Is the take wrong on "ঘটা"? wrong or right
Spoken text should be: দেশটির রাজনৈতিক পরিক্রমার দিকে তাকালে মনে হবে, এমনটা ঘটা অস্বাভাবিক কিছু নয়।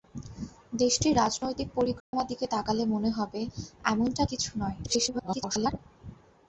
wrong